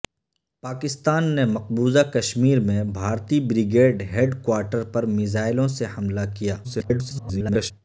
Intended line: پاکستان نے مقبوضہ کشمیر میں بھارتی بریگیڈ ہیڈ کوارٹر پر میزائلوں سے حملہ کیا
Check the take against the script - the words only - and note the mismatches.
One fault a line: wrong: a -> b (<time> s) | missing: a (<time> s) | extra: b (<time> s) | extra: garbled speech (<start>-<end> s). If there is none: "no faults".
extra: garbled speech (6.6-7.7 s)